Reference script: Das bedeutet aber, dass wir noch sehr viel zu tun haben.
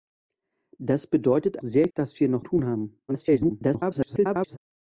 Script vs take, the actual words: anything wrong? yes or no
yes